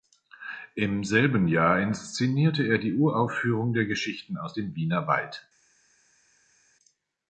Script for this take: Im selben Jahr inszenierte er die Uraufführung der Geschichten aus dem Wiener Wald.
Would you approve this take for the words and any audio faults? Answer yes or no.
yes